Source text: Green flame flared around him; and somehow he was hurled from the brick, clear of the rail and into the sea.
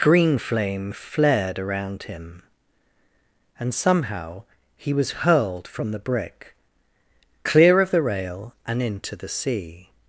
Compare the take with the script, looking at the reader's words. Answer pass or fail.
pass